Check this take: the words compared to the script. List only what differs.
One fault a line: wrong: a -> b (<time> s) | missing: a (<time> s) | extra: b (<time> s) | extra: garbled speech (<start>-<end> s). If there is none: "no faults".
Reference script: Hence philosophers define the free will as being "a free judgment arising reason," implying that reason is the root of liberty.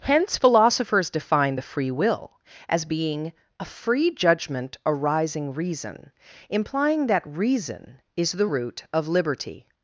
no faults